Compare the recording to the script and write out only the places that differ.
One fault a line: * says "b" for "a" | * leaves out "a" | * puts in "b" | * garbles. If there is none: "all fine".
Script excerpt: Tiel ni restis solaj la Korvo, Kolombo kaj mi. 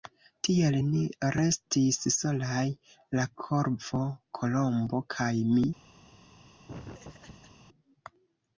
all fine